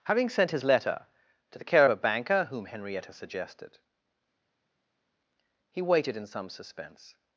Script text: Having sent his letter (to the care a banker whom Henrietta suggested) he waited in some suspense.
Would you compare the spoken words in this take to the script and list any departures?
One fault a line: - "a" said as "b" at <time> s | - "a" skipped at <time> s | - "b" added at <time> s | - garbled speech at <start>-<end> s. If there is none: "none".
none